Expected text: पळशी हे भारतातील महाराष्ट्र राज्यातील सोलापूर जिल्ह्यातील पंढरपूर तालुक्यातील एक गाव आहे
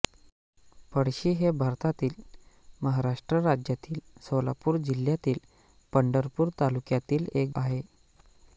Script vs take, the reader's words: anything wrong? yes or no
yes